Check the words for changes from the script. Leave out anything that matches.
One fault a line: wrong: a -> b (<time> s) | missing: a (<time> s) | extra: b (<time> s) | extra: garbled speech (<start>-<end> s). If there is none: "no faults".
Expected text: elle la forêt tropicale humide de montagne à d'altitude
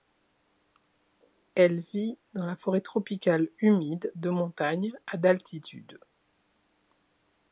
extra: vit dans (1.8 s)